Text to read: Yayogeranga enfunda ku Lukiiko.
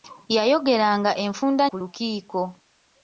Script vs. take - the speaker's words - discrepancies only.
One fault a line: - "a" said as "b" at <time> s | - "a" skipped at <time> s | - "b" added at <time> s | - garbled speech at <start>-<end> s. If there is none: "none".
none